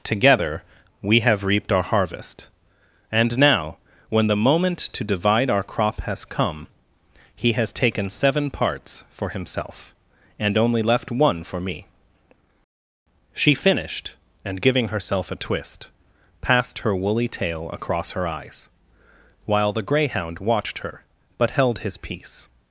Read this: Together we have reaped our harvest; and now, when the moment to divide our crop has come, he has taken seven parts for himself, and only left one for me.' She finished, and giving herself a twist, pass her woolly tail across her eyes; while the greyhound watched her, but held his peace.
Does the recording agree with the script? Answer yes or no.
no